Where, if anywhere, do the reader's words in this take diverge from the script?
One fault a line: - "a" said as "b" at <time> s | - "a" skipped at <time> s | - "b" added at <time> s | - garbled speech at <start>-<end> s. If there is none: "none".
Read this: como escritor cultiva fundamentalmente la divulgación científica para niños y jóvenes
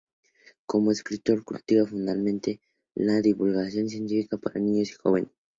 none